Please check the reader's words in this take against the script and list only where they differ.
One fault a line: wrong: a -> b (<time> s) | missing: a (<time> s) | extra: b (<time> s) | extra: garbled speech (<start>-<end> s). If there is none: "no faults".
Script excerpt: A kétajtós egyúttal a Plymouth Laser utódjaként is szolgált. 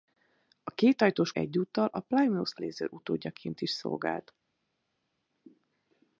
no faults